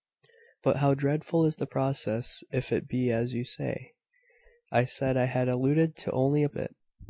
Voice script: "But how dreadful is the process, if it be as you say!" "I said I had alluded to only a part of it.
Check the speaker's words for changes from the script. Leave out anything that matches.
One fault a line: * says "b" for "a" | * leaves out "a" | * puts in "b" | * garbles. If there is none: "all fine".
* leaves out "part"